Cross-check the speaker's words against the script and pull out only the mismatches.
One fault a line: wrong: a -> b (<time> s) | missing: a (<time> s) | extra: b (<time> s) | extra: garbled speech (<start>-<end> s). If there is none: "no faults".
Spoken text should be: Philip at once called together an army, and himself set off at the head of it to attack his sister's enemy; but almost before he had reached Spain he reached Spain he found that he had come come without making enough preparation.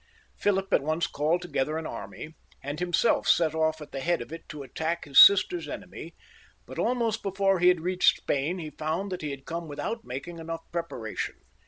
missing: reached Spain he (8.7 s)
missing: come (9.7 s)